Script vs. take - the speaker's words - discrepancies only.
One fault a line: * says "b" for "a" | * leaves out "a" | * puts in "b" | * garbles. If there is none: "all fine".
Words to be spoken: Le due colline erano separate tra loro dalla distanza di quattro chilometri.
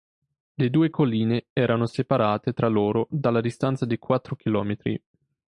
all fine